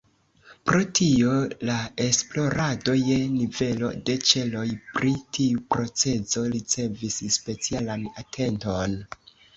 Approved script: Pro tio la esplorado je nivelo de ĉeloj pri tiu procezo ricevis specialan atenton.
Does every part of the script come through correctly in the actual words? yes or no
yes